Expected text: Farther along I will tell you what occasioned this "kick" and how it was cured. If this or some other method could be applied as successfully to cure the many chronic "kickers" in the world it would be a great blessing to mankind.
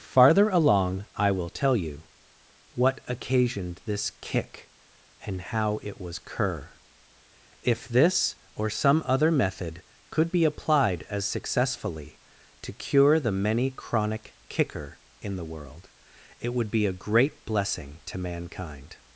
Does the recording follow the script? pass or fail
fail